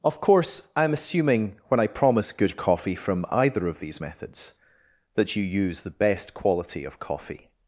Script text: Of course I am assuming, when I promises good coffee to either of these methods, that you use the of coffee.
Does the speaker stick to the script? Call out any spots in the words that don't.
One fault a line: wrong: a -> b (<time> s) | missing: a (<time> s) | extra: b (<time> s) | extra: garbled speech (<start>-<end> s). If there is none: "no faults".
wrong: promises -> promise (1.9 s)
wrong: to -> from (3.0 s)
extra: best quality (5.9 s)